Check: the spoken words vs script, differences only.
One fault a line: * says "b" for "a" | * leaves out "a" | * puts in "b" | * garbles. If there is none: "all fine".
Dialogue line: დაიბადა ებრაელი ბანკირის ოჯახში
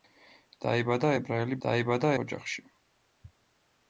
* says "დაიბადა" for "ბანკირის"